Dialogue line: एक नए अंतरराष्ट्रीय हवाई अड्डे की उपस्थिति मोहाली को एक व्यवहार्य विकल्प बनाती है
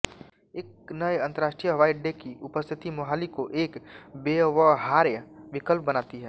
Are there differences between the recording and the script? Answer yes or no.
no